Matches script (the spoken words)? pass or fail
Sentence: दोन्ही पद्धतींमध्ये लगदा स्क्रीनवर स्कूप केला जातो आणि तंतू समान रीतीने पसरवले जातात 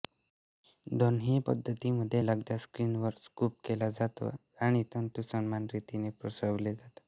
pass